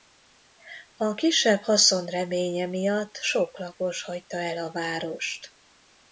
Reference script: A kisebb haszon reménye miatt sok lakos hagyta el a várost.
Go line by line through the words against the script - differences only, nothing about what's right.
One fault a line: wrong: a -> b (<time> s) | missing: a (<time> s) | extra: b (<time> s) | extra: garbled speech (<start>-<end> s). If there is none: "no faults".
no faults